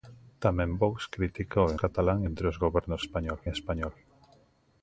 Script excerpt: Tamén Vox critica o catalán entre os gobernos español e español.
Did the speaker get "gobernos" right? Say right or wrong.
right